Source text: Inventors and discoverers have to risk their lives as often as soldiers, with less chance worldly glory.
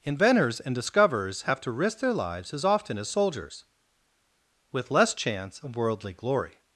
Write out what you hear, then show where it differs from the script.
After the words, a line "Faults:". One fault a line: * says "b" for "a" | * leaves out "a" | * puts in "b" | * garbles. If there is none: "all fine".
Inventors and discoverers have to risk their lives as often as soldiers, with less chance of worldly glory.
Faults:
* puts in "of"